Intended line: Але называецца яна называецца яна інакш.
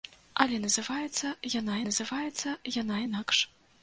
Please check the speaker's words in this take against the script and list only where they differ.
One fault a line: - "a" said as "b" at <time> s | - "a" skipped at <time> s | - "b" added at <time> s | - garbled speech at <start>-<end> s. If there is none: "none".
none